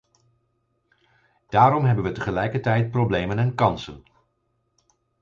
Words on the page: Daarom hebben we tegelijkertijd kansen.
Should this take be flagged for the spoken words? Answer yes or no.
yes